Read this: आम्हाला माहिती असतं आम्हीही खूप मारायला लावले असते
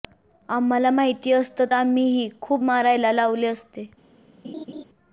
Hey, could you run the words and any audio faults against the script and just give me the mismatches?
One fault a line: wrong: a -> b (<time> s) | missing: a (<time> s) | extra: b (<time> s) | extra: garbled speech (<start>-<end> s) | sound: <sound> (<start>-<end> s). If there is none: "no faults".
sound: laugh (4.4-4.8 s)